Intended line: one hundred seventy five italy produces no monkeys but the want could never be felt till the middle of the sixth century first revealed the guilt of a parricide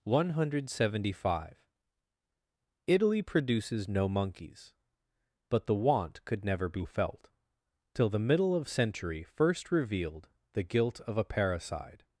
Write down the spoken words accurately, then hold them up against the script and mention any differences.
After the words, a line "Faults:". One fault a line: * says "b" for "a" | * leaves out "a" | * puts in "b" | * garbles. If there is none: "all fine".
one hundred seventy five italy produces no monkeys but the want could never be felt till the middle of century first revealed the guilt of a parricide
Faults:
* leaves out "the sixth"